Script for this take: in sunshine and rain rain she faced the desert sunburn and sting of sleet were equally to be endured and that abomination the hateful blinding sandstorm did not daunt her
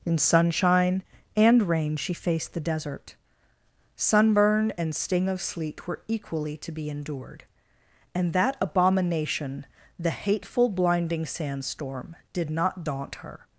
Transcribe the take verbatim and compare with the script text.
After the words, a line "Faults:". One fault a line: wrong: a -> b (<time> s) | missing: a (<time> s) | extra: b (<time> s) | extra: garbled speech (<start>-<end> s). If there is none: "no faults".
in sunshine and rain she faced the desert sunburn and sting of sleet were equally to be endured and that abomination the hateful blinding sandstorm did not daunt her
Faults:
missing: rain (1.9 s)